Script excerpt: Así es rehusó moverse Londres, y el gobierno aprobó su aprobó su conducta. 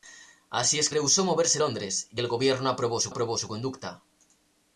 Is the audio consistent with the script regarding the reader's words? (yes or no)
yes